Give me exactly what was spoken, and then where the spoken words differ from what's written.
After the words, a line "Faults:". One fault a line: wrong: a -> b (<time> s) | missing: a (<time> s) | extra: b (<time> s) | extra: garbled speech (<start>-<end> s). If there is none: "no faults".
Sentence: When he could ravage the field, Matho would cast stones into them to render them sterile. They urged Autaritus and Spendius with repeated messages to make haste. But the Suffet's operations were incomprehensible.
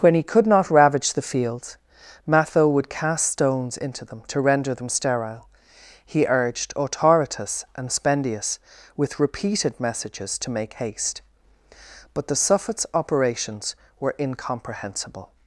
When he could not ravage the fields, Matho would cast stones into them to render them sterile. He urged Autaritus and Spendius with repeated messages to make haste. But the Suffet's operations were incomprehensible.
Faults:
extra: not (0.5 s)
wrong: field -> fields (1.2 s)
wrong: They -> He (6.1 s)